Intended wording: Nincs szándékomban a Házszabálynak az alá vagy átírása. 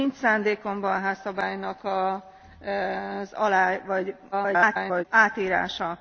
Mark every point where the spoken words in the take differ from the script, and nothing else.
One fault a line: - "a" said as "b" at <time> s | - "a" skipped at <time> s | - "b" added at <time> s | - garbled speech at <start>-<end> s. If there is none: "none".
- garbled speech at 4.3-5.0 s